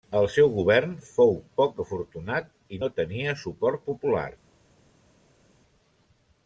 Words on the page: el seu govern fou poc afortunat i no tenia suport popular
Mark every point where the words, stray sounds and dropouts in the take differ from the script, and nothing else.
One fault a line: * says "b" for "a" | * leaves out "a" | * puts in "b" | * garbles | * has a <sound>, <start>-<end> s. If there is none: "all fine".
all fine